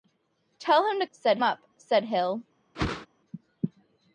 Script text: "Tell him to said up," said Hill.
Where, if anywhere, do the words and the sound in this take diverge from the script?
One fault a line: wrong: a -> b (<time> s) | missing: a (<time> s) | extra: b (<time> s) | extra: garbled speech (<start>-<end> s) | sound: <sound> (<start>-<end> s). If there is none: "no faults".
sound: whoosh (2.7-3.1 s)